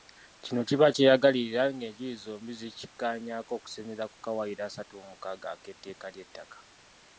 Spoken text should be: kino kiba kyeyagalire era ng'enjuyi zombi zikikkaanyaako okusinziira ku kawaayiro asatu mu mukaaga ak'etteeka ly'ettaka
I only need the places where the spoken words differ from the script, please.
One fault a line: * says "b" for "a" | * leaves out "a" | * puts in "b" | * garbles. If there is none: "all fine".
all fine